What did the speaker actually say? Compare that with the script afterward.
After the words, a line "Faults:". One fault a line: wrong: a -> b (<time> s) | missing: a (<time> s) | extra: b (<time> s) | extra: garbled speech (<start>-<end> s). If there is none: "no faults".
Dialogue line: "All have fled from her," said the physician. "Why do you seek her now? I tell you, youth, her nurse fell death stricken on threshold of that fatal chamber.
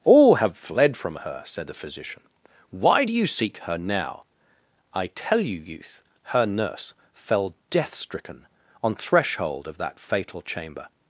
"All have fled from her," said the physician. "Why do you seek her now? I tell you, youth, her nurse fell death stricken on threshold of that fatal chamber.
Faults:
no faults